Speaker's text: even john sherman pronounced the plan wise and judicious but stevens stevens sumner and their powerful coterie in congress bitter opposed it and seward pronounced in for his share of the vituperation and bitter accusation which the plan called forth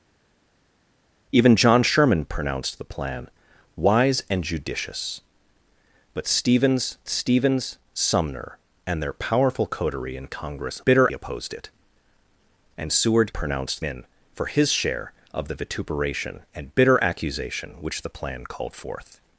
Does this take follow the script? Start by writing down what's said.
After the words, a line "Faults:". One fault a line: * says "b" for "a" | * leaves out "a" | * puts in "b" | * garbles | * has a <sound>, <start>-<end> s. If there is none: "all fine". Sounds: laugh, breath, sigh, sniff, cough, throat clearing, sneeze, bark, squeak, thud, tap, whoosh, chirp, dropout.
even john sherman pronounced the plan wise and judicious but stevens stevens sumner and their powerful coterie in congress bitter opposed it and seward pronounced in for his share of the vituperation and bitter accusation which the plan called forth
Faults:
all fine